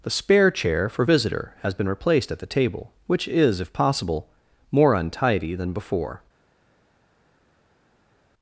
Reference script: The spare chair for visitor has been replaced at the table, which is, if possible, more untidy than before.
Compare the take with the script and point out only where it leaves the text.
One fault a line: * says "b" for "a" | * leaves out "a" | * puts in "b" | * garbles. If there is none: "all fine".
all fine